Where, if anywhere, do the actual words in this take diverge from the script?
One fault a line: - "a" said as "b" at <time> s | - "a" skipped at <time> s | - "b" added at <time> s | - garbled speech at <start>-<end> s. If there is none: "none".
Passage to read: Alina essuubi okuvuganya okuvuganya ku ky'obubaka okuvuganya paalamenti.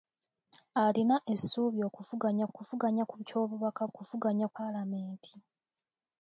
none